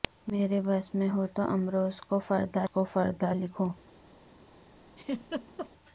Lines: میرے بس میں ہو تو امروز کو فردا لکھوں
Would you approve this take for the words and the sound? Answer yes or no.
no